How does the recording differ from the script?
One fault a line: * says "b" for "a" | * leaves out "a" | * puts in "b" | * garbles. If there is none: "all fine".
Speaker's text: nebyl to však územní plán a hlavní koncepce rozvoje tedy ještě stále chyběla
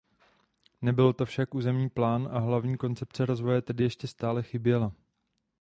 all fine